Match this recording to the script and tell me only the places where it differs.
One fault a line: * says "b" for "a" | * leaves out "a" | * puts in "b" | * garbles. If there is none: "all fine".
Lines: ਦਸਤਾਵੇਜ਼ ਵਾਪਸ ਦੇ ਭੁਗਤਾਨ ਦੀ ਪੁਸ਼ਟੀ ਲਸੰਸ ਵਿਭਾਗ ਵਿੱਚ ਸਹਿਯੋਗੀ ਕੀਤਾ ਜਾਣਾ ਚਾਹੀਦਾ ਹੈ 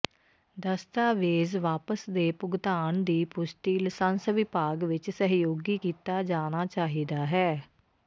all fine